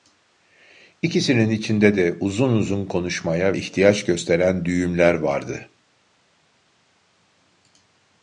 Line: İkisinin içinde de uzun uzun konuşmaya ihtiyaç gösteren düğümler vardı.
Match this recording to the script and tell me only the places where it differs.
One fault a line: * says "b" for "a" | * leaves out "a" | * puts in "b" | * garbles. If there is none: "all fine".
all fine